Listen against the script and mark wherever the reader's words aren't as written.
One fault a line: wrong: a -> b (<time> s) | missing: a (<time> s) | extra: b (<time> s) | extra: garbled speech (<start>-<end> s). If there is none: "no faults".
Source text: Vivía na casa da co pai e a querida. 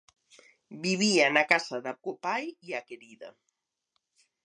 no faults